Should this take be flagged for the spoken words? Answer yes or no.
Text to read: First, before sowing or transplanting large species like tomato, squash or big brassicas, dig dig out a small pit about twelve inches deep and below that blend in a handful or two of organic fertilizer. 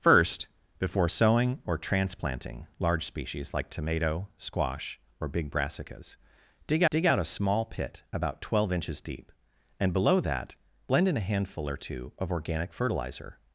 no